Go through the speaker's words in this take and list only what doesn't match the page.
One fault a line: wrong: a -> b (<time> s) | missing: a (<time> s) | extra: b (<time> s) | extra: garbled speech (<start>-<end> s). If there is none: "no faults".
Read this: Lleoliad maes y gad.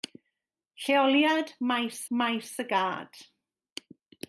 extra: maes (2.1 s)